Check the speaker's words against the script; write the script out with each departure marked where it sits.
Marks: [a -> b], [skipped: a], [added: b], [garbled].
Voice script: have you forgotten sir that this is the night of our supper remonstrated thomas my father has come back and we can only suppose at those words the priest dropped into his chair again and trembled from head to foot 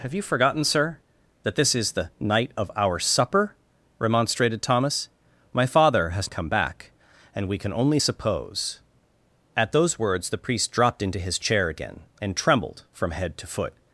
have you forgotten sir that this is the night of our supper remonstrated thomas my father has come back and we can only suppose at those words the priest dropped into his chair again and trembled from head to foot